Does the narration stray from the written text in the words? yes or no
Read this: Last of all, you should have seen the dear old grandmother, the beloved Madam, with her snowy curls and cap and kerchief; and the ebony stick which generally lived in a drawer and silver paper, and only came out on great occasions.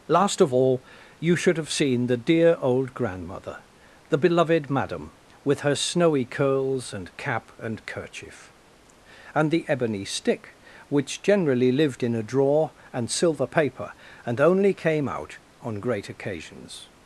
no